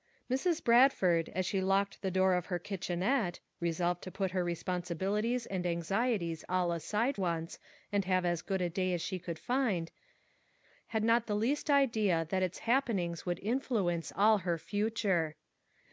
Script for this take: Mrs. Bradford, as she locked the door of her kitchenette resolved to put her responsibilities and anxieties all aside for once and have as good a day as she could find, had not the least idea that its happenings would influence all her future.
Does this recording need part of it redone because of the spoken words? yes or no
yes